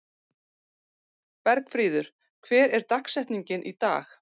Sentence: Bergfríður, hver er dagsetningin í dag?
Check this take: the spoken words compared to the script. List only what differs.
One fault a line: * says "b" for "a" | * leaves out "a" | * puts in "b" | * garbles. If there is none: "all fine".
all fine